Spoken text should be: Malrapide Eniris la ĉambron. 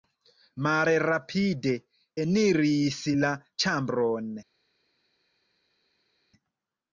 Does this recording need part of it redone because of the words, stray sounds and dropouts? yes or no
no